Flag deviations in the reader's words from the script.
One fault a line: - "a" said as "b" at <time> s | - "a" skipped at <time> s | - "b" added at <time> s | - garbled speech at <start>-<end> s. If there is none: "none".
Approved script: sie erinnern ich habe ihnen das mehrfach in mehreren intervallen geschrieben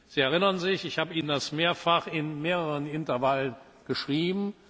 - "sich" added at 0.6 s